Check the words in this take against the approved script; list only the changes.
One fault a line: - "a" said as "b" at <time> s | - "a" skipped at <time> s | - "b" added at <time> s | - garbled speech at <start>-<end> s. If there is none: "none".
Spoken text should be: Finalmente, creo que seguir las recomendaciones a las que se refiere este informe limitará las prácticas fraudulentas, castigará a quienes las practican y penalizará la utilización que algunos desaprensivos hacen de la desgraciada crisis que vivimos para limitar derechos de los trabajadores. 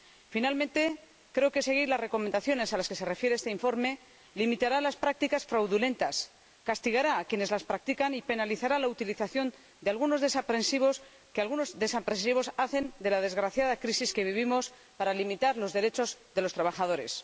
- "los" added at 15.6 s